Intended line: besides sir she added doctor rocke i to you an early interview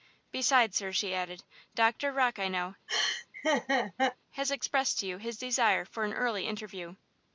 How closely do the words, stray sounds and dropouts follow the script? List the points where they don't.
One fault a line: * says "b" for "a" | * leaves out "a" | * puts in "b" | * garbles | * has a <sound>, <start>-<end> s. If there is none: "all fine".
* puts in "know has expressed"
* has a laugh, 2.9-4.2 s
* puts in "his desire for"